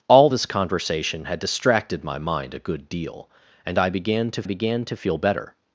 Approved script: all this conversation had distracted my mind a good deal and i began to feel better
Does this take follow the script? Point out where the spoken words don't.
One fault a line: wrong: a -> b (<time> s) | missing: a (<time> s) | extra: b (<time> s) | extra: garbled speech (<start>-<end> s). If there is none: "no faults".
extra: began to (4.4 s)